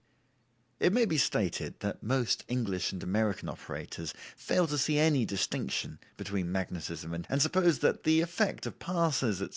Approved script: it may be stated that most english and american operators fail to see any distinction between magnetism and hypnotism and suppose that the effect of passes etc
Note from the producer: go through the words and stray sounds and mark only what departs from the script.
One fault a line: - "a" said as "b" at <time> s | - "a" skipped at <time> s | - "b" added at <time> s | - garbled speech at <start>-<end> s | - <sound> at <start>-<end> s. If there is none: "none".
- "hypnotism" skipped at 7.3 s